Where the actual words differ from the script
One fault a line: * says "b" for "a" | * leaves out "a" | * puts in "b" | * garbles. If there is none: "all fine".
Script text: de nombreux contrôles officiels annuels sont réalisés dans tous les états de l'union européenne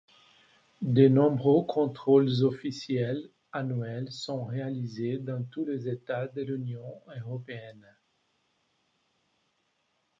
all fine